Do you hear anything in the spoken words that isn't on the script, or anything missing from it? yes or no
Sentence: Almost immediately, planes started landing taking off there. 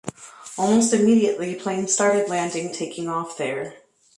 no